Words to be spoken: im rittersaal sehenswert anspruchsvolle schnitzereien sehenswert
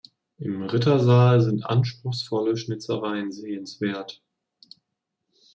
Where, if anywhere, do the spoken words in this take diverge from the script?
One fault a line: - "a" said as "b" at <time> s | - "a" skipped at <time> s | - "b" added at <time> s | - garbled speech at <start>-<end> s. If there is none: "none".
- "sehenswert" said as "sind" at 1.4 s